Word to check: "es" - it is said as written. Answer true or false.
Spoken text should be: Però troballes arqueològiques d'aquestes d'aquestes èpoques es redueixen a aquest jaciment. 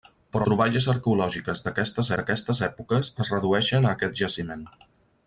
true